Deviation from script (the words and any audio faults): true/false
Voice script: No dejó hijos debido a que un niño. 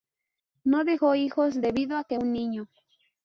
false